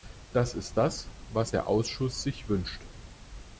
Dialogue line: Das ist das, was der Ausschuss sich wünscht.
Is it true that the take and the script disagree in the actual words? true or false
false